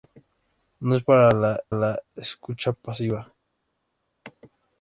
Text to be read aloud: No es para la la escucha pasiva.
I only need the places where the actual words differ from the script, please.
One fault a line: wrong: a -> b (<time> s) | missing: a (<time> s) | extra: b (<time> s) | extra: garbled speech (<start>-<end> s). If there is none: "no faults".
no faults